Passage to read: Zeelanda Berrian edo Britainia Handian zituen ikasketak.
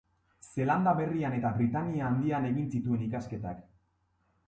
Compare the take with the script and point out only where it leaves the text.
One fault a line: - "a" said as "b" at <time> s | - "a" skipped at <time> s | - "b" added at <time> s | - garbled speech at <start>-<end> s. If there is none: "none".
- "edo" said as "eta" at 1.4 s
- "egin" added at 2.5 s